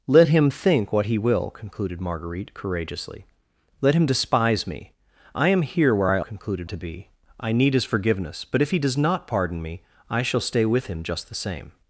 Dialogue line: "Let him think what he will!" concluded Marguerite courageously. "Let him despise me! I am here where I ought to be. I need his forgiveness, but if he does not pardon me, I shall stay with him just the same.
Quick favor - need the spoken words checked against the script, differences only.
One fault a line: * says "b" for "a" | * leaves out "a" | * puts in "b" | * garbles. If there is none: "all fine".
* says "concluded" for "ought"